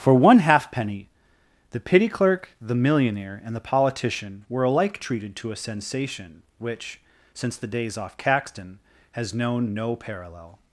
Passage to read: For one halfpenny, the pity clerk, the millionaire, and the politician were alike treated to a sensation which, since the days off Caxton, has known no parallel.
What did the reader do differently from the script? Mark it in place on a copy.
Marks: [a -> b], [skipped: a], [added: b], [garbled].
For one halfpenny, the pity clerk, the millionaire, and the politician were alike treated to a sensation which, since the days off Caxton, has known no parallel.